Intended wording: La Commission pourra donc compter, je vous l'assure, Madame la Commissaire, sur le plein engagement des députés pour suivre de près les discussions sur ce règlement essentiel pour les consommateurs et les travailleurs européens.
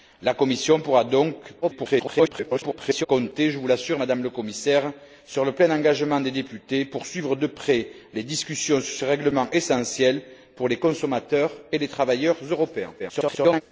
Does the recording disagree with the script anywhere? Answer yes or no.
yes